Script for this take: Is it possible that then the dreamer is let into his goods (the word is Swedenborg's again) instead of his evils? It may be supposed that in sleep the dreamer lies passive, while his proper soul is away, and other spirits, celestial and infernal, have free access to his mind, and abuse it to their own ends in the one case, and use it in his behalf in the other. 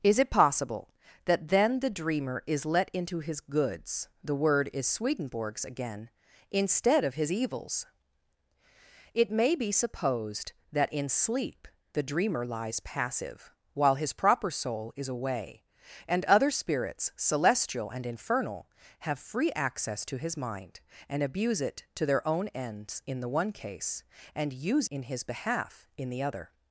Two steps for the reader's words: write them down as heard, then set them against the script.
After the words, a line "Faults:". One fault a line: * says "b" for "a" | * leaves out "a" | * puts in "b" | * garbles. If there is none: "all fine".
Is it possible that then the dreamer is let into his goods (the word is Swedenborg's again) instead of his evils? It may be supposed that in sleep the dreamer lies passive, while his proper soul is away, and other spirits, celestial and infernal, have free access to his mind, and abuse it to their own ends in the one case, and use in his behalf in the other.
Faults:
* leaves out "it"